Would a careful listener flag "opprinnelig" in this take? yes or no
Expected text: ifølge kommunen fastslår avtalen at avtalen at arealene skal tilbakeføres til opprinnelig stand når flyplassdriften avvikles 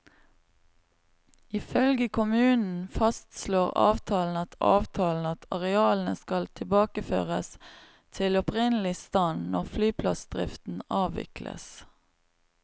no